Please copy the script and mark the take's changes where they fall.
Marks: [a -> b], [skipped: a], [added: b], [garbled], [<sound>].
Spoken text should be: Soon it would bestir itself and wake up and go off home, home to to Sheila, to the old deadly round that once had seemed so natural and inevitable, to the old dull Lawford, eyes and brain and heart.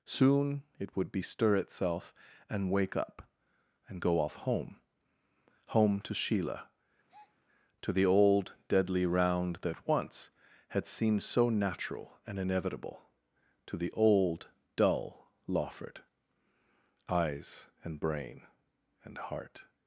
Soon it would bestir itself and wake up and go off home, home to [skipped: to] Sheila, [breath] to the old deadly round that once had seemed so natural and inevitable, to the old dull Lawford, eyes and brain and heart.